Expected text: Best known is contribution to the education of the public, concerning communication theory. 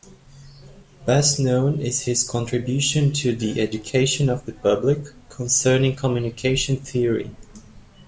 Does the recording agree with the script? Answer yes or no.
no